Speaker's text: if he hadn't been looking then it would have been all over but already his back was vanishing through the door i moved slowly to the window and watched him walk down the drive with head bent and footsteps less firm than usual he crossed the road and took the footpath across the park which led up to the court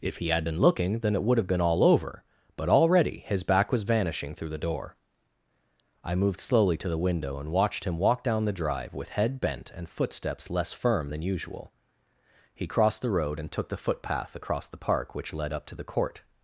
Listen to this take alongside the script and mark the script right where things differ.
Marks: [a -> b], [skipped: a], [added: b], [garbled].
if he [hadn't -> had] been looking then it would have been all over but already his back was vanishing through the door i moved slowly to the window and watched him walk down the drive with head bent and footsteps less firm than usual he crossed the road and took the footpath across the park which led up to the court